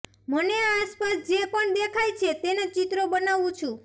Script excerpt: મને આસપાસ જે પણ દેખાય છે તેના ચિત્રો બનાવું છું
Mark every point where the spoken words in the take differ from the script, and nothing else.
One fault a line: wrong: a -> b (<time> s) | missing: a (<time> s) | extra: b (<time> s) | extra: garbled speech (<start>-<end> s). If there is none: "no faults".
no faults